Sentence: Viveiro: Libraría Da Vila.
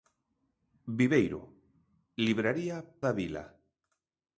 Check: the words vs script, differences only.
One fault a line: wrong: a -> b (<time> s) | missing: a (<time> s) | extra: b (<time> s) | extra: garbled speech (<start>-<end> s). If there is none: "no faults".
no faults